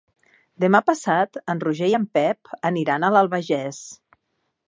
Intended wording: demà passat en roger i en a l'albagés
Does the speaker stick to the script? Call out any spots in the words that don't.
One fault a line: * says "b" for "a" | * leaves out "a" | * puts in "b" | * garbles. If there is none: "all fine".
* puts in "pep aniran"